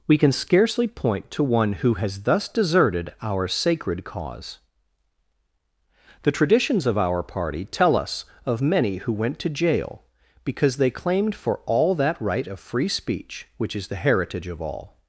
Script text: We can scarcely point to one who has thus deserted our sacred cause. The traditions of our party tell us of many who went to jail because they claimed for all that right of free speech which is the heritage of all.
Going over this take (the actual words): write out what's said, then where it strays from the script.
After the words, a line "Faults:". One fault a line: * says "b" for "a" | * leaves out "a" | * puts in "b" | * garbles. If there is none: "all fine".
We can scarcely point to one who has thus deserted our sacred cause. The traditions of our party tell us of many who went to jail because they claimed for all that right of free speech which is the heritage of all.
Faults:
all fine